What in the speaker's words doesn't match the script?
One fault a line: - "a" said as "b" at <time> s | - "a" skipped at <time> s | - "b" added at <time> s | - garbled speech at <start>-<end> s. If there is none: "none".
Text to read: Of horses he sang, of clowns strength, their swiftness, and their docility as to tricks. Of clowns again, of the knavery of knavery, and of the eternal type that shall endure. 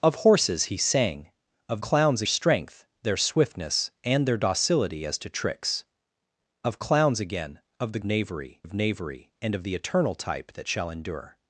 none